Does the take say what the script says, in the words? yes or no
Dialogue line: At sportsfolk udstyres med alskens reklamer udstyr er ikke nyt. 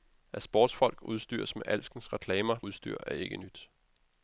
yes